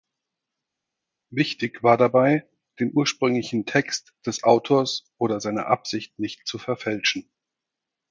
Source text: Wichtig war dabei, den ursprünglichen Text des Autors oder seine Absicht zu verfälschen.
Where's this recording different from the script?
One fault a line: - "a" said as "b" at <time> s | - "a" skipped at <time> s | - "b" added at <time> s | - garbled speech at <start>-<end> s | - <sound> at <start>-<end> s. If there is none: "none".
- "nicht" added at 6.2 s